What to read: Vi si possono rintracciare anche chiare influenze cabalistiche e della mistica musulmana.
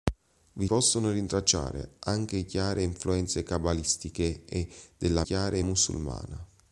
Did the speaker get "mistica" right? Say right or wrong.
wrong